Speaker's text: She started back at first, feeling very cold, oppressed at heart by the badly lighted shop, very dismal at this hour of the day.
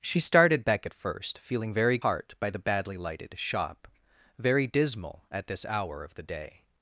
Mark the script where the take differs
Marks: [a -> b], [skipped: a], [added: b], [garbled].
She started back at first, feeling very [skipped: cold, oppressed at] heart by the badly lighted shop, very dismal at this hour of the day.